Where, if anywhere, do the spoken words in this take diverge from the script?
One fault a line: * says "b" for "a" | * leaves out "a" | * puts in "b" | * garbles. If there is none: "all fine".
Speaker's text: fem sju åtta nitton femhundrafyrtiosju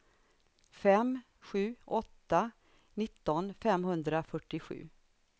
all fine